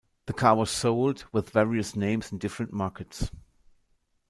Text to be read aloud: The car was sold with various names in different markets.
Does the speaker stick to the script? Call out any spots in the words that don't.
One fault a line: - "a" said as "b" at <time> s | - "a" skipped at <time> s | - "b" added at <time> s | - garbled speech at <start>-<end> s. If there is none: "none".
none